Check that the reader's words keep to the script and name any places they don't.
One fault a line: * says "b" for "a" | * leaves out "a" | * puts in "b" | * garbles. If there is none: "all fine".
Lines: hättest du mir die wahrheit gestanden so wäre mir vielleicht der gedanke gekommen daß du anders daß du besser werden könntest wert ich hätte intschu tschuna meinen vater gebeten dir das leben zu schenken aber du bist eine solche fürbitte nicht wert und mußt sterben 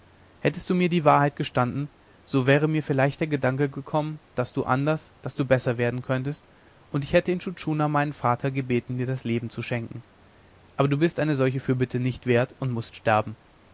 * says "und" for "wert"